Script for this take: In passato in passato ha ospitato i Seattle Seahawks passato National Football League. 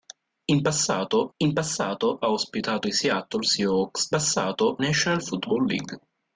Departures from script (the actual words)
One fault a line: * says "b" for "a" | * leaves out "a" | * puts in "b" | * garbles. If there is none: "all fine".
all fine